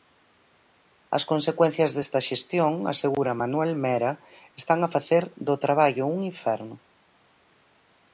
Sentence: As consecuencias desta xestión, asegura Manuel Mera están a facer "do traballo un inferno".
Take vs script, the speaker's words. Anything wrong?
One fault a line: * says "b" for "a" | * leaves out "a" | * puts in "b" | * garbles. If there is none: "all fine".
all fine